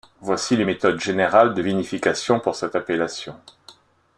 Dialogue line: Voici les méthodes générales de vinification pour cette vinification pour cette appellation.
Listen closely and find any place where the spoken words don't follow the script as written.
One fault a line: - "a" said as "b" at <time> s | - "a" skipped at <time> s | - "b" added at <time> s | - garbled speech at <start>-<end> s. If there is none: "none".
- "vinification pour cette" skipped at 2.8 s